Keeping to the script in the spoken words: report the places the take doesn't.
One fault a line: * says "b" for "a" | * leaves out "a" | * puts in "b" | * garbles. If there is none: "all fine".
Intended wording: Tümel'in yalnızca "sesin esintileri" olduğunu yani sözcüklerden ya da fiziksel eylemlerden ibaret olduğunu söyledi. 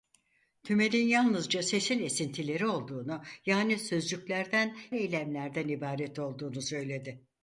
* leaves out "ya da fiziksel"